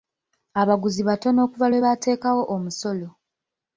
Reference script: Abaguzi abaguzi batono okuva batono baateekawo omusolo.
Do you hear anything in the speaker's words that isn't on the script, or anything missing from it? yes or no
yes